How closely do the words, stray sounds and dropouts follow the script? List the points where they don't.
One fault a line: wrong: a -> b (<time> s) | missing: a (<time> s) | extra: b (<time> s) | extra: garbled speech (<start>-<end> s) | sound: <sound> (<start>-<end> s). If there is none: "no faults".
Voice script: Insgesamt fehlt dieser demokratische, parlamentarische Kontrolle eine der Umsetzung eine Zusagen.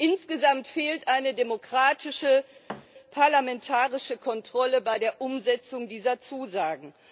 wrong: dieser -> eine (1.1 s)
sound: thud (2.7-2.9 s)
wrong: eine -> bei (4.8 s)
wrong: eine -> dieser (5.9 s)